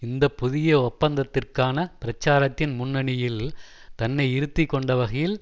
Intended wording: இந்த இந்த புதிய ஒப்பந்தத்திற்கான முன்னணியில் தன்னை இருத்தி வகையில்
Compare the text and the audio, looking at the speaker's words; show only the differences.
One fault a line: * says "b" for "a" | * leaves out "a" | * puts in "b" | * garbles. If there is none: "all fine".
* leaves out "இந்த"
* puts in "பிரச்சாரத்தின்"
* puts in "கொண்ட"